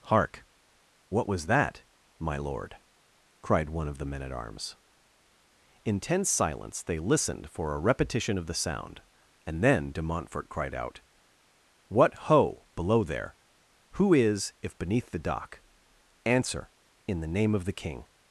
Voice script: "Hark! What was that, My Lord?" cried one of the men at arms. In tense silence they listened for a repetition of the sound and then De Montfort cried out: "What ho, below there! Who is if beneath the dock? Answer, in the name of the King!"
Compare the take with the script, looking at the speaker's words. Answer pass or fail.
pass